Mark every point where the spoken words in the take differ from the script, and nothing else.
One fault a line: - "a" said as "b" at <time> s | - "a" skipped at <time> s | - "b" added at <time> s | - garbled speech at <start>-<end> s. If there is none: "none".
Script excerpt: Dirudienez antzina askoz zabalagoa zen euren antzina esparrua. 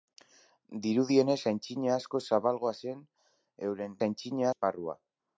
none